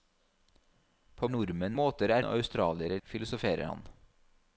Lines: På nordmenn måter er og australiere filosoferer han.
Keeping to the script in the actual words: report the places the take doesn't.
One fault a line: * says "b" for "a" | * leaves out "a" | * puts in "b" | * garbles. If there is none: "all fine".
all fine